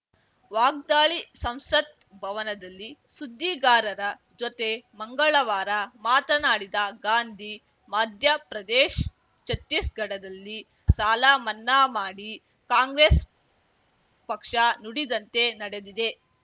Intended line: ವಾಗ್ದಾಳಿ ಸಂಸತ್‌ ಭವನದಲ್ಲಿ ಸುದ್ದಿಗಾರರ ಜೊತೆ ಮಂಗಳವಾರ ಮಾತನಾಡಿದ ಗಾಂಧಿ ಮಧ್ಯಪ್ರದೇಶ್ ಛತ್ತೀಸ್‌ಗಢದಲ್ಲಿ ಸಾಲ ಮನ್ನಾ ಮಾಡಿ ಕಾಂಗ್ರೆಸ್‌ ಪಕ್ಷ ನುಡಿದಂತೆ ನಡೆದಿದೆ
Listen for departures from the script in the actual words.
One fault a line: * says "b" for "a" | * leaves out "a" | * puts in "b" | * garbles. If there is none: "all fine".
all fine